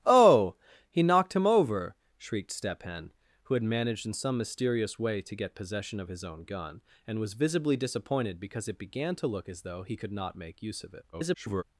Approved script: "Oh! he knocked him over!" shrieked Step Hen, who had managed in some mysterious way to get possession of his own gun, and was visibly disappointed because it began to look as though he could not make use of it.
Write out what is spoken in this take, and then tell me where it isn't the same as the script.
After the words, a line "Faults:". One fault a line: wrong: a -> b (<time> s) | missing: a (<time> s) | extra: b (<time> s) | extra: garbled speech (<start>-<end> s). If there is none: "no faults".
"Oh! he knocked him over!" shrieked Step Hen, who had managed in some mysterious way to get possession of his own gun, and was visibly disappointed because it began to look as though he could not make use of it. [garbled]
Faults:
extra: garbled speech (11.1-11.6 s)